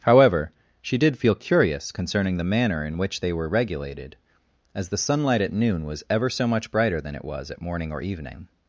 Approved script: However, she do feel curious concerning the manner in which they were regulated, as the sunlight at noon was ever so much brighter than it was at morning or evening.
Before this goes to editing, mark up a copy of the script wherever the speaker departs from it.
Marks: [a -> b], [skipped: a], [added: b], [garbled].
However, she [do -> did] feel curious concerning the manner in which they were regulated, as the sunlight at noon was ever so much brighter than it was at morning or evening.